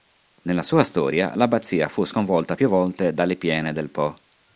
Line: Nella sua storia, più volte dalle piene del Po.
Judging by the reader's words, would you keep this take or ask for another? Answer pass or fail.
fail